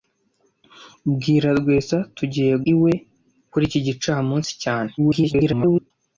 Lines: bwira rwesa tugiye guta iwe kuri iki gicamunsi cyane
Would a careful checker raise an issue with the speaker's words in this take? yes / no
yes